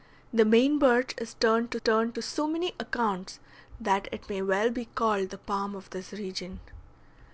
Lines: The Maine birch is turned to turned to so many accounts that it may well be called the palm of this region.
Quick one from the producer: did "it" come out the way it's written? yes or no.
yes